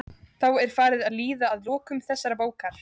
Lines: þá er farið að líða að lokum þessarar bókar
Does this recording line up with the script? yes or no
yes